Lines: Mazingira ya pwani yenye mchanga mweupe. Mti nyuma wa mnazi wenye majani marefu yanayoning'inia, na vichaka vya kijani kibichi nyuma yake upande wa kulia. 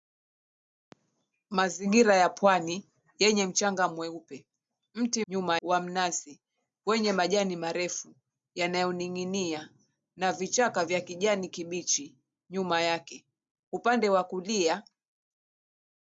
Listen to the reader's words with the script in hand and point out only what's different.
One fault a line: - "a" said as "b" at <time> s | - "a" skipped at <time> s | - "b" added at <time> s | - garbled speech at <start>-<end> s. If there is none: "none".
none